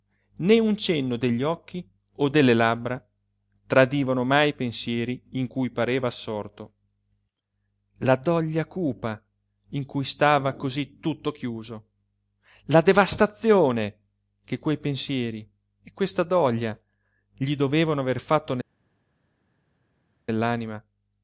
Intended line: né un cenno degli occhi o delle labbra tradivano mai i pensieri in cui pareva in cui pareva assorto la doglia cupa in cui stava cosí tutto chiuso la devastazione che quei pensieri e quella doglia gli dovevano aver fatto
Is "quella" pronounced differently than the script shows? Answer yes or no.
yes